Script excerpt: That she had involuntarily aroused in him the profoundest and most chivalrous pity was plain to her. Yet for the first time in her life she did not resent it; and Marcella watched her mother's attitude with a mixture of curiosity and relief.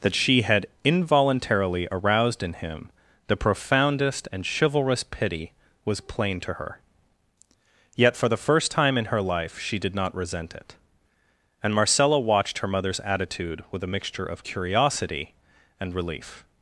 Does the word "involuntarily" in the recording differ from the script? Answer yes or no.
no